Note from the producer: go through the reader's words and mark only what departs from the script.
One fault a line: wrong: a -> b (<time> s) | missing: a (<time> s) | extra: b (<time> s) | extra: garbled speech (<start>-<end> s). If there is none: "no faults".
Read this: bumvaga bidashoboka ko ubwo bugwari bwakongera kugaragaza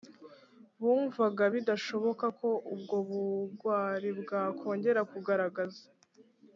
no faults